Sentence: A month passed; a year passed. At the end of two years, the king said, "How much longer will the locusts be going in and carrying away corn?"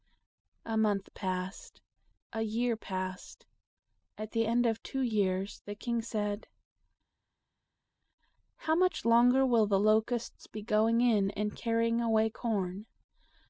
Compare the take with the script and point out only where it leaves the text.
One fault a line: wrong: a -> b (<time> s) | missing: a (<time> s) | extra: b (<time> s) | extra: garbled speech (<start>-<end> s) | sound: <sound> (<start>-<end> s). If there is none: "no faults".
no faults